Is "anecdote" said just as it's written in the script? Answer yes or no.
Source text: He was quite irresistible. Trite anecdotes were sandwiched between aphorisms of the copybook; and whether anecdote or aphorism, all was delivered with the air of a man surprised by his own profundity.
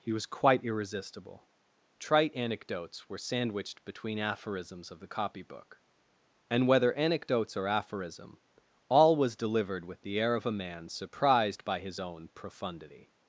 no